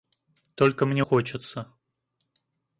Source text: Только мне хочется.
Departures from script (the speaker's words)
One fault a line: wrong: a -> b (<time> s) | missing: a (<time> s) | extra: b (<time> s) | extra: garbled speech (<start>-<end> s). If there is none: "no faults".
no faults